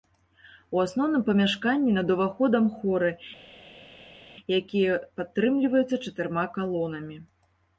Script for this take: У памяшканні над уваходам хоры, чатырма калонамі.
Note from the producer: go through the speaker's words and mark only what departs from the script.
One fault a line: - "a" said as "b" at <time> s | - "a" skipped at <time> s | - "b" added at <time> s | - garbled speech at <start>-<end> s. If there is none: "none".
- "асноўным" added at 0.8 s
- "якія падтрымліваюцца" added at 4.6 s